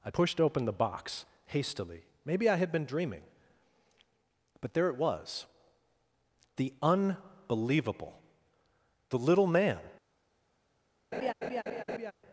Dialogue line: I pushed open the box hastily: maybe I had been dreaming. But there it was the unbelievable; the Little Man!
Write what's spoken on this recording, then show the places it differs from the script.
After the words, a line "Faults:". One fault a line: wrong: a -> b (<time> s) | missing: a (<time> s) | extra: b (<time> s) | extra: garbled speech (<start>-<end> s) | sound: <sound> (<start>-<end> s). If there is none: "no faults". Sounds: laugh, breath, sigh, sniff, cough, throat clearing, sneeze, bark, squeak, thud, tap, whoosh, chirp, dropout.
I pushed open the box hastily: maybe I had been dreaming. But there it was the unbelievable; the Little Man!
Faults:
sound: laugh (11.1-12.1 s)